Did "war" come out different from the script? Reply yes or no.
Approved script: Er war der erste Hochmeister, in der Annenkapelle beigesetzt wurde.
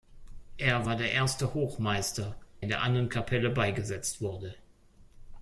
no